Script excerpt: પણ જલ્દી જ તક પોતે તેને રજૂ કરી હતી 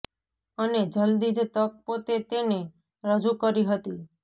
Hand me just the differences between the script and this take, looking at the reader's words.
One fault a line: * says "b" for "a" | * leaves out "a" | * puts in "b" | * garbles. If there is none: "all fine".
* says "અને" for "પણ"